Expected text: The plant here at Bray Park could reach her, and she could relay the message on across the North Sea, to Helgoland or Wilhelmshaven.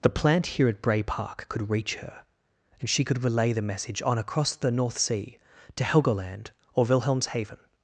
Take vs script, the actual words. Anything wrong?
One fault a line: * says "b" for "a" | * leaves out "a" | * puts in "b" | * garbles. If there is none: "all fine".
all fine